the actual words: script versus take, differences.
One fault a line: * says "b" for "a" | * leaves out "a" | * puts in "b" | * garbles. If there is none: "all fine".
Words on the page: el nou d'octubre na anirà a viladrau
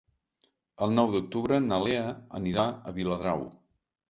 * puts in "lea"